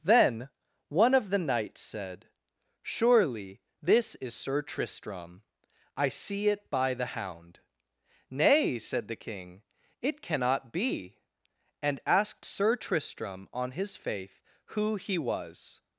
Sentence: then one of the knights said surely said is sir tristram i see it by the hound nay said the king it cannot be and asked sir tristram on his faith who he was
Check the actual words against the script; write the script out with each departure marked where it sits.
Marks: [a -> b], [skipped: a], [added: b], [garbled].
then one of the knights said surely [said -> this] is sir tristram i see it by the hound nay said the king it cannot be and asked sir tristram on his faith who he was